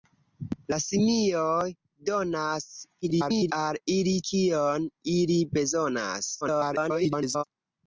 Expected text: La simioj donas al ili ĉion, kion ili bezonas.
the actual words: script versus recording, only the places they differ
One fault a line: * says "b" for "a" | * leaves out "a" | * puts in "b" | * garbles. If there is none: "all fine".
* garbles
* leaves out "ĉion"
* garbles